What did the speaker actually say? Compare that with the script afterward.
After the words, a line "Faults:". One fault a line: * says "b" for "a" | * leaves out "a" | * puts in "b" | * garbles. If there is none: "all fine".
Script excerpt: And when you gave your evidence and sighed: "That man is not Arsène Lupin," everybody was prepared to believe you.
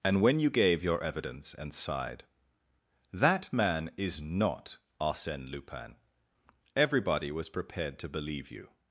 And when you gave your evidence and sighed: "That man is not Arsène Lupin," everybody was prepared to believe you.
Faults:
all fine